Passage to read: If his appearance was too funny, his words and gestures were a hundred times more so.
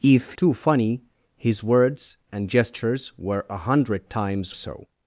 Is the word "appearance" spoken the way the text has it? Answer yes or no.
no